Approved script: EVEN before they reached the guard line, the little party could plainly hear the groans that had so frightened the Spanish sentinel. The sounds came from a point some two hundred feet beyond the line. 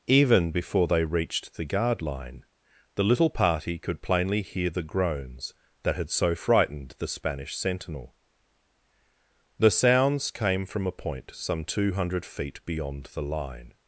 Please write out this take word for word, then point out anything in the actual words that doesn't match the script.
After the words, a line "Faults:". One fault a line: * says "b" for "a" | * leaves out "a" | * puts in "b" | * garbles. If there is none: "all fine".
EVEN before they reached the guard line, the little party could plainly hear the groans that had so frightened the Spanish sentinel. The sounds came from a point some two hundred feet beyond the line.
Faults:
all fine